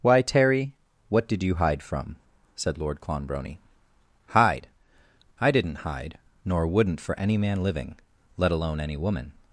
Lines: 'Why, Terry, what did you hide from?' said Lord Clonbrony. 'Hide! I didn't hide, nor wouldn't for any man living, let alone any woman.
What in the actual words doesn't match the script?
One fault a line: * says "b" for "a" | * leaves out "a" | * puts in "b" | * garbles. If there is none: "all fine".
all fine